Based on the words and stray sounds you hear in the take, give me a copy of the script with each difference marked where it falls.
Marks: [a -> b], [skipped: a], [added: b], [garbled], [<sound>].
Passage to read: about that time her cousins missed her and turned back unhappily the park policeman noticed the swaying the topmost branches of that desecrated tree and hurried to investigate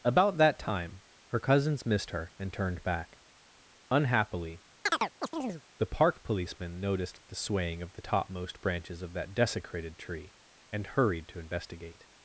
about that time her cousins missed her and turned back unhappily [chirp] the park policeman noticed the swaying [added: of] the topmost branches of that desecrated tree and hurried to investigate